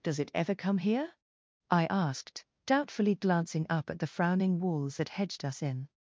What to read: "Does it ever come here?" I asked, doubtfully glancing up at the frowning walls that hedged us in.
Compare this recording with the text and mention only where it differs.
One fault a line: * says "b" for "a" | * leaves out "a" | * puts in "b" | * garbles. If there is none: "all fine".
all fine